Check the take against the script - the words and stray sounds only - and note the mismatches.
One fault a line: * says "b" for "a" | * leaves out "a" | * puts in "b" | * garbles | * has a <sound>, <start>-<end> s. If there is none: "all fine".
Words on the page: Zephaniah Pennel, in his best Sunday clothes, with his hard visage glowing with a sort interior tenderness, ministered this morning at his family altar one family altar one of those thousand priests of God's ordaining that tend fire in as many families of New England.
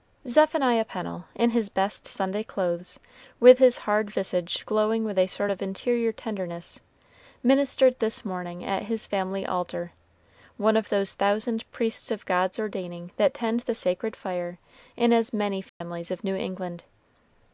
* puts in "of"
* leaves out "family altar one"
* puts in "the sacred"
* has a dropout, 15.7-15.8 s